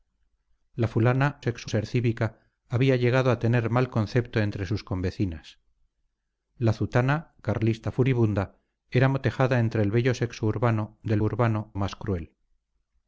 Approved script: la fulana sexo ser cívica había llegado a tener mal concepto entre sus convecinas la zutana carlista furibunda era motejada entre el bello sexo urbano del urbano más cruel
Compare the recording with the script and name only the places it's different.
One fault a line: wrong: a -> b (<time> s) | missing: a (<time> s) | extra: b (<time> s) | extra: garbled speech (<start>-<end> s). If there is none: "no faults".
no faults